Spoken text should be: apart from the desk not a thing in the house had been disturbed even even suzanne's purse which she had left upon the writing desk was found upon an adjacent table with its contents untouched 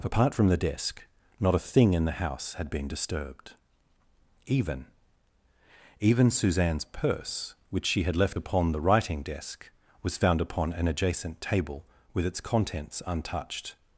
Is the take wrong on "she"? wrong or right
right